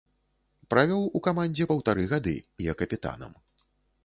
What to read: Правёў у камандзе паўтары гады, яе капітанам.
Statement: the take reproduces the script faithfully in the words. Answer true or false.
true